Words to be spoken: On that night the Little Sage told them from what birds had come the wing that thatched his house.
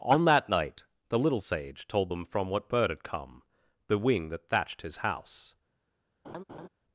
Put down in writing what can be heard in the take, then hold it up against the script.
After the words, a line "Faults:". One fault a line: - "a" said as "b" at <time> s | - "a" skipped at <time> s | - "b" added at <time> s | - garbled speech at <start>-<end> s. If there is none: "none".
On that night the Little Sage told them from what bird had come the wing that thatched his house.
Faults:
- "birds" said as "bird" at 2.7 s